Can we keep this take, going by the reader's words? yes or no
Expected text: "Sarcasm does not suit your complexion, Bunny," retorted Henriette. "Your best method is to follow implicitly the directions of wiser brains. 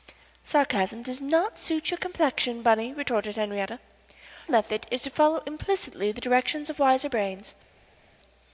no